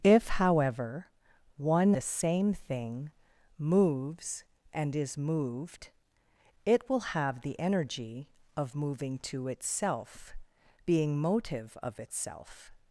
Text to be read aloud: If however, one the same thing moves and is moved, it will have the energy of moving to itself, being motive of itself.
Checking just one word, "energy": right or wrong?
right